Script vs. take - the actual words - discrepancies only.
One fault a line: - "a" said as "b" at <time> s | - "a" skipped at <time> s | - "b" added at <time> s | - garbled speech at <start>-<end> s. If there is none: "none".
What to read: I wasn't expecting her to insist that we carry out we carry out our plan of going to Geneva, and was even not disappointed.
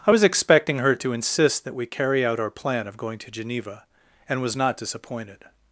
- "wasn't" said as "was" at 0.1 s
- "we carry out" skipped at 2.4 s
- "even" skipped at 4.6 s